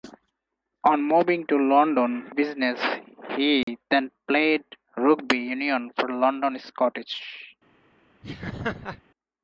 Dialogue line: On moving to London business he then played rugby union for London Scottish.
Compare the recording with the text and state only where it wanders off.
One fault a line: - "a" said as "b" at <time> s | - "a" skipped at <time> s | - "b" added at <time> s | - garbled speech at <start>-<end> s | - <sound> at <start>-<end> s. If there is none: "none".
- dropout at 3.6-3.7 s
- laugh at 8.2-9.0 s